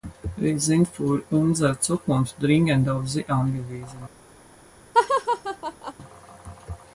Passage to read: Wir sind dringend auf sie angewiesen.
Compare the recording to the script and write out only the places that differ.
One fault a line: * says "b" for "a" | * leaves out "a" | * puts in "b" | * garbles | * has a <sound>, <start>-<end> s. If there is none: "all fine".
* puts in "für unsere Zukunft"
* has a laugh, 4.9-5.9 s